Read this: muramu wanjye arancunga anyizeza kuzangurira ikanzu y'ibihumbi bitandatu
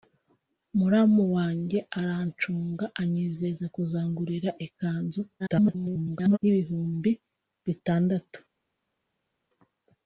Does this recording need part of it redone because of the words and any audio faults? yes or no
yes